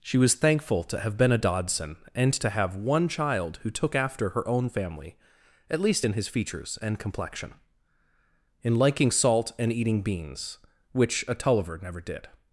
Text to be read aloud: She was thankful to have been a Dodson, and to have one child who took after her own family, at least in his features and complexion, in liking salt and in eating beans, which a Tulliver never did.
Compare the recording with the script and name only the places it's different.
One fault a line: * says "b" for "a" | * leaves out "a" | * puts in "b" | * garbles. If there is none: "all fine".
* leaves out "in"